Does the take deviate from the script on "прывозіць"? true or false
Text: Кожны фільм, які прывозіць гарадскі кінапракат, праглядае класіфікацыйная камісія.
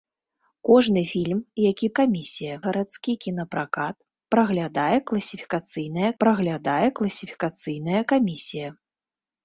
true